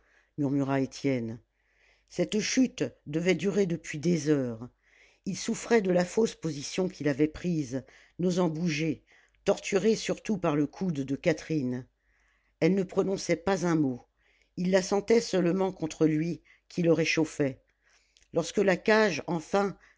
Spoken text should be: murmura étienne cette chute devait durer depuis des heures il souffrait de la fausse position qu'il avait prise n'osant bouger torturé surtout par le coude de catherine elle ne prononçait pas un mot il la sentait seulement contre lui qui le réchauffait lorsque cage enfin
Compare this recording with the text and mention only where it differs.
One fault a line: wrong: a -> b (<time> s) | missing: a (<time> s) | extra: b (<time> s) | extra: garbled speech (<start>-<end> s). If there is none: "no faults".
extra: la (18.6 s)